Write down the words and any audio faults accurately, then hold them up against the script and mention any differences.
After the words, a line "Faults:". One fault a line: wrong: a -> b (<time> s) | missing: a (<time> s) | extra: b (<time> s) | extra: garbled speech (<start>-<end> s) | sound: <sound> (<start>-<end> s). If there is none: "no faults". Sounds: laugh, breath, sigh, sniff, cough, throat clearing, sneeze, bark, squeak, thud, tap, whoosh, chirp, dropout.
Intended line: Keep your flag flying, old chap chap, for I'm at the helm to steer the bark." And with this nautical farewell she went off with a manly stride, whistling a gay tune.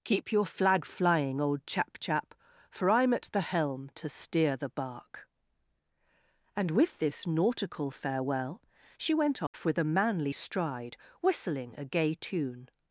Keep your flag flying, old chap chap, for I'm at the helm to steer the bark." And with this nautical farewell she went off with a manly stride, whistling a gay tune.
Faults:
sound: dropout (9.5-9.5 s)